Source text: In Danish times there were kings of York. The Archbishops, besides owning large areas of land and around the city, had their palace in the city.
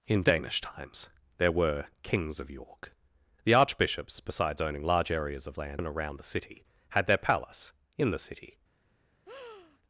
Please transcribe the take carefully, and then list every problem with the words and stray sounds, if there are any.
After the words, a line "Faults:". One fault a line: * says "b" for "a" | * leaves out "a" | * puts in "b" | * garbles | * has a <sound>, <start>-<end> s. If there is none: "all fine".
In Danish times there were kings of York. The Archbishops, besides owning large areas of land and around the city, had their palace in the city.
Faults:
* has a breath, 9.3-9.8 s